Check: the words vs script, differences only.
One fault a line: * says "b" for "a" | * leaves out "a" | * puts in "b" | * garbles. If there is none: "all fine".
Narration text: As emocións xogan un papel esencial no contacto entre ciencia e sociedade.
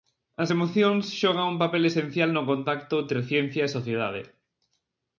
all fine